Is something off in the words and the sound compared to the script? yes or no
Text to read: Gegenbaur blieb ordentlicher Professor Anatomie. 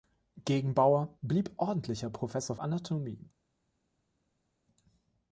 no